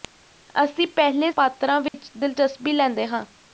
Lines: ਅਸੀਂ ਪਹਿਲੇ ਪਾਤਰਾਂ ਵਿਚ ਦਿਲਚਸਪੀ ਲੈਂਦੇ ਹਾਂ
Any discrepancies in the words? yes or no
no